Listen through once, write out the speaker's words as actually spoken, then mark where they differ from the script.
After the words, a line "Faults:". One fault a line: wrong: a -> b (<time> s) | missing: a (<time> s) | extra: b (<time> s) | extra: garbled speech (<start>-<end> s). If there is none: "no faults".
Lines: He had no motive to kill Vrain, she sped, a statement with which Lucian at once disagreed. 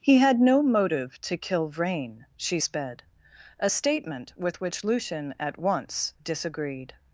He had no motive to kill Vrain, she sped, a statement with which Lucian at once disagreed.
Faults:
no faults